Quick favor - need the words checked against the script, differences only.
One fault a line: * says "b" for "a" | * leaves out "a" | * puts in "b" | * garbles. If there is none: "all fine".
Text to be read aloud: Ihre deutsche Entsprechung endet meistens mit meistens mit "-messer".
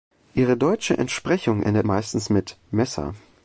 * leaves out "meistens mit"